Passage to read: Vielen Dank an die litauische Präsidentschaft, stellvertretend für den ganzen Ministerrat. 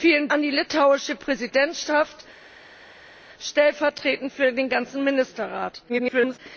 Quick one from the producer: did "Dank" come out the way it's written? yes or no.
no